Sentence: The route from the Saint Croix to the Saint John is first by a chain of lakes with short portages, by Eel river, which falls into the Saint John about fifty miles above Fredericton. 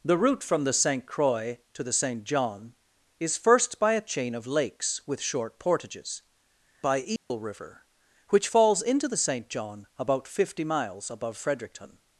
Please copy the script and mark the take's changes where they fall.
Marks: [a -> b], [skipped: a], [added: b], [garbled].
The route from the Saint Croix to the Saint John is first by a chain of lakes with short portages, by Eel river, which falls into the Saint John about fifty miles above Fredericton.